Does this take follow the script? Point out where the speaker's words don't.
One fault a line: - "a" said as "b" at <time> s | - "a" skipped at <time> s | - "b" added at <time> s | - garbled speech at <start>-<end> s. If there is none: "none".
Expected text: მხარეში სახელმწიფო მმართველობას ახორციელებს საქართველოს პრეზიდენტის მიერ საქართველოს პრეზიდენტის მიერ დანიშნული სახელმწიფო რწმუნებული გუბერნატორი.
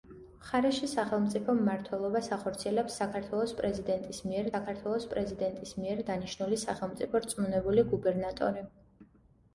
none